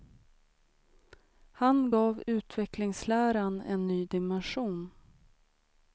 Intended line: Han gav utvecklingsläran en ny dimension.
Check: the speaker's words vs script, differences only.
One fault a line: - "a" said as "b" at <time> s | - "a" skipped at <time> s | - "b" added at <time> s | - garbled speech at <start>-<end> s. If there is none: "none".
none